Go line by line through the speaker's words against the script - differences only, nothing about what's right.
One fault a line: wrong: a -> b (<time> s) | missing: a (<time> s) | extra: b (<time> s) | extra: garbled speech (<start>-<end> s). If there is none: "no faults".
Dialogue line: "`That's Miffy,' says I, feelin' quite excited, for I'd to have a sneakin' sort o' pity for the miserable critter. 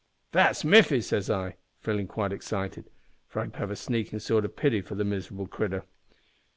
no faults